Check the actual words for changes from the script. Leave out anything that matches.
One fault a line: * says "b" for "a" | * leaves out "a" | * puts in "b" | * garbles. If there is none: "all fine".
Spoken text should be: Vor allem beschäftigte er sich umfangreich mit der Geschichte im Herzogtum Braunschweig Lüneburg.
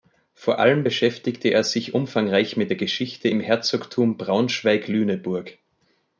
all fine